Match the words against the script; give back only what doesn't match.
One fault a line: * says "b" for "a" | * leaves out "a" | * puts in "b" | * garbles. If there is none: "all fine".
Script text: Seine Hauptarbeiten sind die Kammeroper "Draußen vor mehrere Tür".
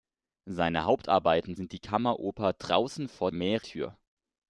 all fine